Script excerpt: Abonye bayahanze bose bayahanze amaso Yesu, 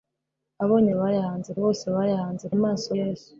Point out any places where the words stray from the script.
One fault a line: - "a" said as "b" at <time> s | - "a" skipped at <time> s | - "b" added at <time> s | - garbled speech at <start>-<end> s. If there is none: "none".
none